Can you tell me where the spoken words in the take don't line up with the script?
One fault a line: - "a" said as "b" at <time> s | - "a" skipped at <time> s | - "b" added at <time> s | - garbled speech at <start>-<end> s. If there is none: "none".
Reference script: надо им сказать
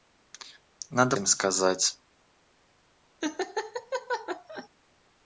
none